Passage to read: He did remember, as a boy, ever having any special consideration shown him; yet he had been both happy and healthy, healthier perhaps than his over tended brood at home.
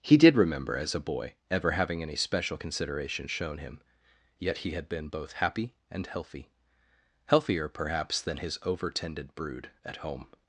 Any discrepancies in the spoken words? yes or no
no